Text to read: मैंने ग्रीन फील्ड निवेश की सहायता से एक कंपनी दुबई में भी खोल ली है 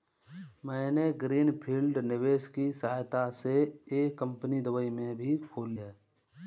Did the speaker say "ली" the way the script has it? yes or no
no